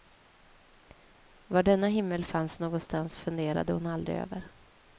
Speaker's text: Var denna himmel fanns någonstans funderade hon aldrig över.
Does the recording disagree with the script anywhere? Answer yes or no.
no